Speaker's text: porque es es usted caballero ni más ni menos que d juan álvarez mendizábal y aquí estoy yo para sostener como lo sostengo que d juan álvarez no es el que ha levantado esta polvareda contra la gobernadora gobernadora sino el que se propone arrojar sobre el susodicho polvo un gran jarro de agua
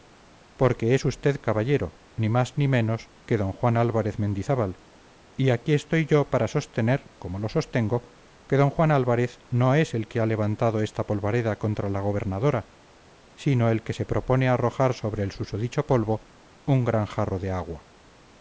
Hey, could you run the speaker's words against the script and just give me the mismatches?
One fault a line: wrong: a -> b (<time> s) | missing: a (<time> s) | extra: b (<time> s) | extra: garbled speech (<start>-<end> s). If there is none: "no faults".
missing: es (1.1 s)
missing: gobernadora (12.7 s)